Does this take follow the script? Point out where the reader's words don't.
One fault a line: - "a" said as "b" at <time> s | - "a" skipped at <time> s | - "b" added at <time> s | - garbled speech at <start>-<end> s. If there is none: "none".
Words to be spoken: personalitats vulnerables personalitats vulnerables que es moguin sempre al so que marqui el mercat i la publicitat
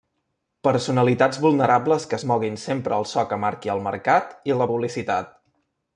- "personalitats vulnerables" skipped at 2.1 s